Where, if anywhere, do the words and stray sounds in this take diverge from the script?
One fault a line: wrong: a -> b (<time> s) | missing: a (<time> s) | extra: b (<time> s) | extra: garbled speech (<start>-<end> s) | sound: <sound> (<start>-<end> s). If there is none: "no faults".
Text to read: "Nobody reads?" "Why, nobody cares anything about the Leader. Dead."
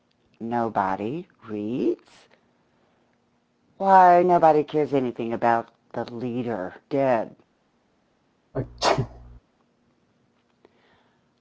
sound: sneeze (8.5-9.4 s)